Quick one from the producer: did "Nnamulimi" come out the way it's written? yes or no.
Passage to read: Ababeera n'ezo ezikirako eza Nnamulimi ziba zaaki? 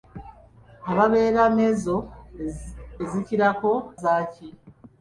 no